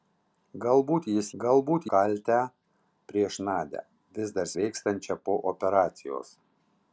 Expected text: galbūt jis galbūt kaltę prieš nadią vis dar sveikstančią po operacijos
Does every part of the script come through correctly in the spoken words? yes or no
yes